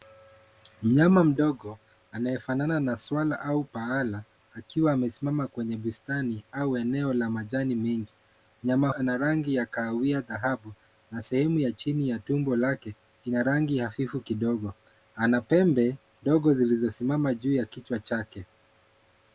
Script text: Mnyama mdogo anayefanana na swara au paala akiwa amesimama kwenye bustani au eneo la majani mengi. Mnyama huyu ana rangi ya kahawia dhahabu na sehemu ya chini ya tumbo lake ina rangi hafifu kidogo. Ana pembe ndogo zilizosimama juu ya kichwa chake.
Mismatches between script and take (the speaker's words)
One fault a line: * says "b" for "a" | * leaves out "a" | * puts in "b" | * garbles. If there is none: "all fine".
* leaves out "huyu"